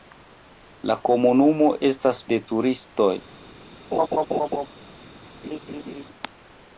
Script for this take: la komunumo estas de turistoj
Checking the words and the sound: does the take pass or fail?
fail